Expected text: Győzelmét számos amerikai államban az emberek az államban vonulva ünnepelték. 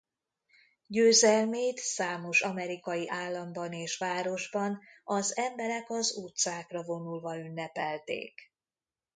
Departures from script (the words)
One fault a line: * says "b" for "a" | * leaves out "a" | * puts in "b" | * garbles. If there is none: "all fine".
* puts in "és városban"
* says "utcákra" for "államban"